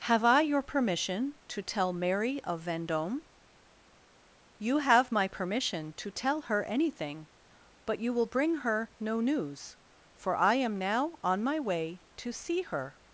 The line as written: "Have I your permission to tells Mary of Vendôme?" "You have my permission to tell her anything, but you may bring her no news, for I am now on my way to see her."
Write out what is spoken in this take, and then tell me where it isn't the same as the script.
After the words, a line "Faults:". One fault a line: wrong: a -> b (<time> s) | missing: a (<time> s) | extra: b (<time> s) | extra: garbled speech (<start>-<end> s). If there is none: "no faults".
"Have I your permission to tell Mary of Vendôme?" "You have my permission to tell her anything, but you will bring her no news, for I am now on my way to see her."
Faults:
wrong: tells -> tell (1.6 s)
wrong: may -> will (8.1 s)